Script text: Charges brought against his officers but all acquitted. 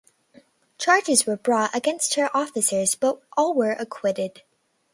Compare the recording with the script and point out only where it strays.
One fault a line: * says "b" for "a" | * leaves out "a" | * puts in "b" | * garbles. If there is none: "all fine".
* puts in "were"
* says "her" for "his"
* puts in "were"